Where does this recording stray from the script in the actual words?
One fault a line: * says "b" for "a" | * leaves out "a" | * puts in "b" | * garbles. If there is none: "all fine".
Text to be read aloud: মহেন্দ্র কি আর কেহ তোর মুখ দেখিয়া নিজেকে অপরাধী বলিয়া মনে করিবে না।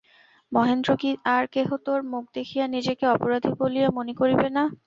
all fine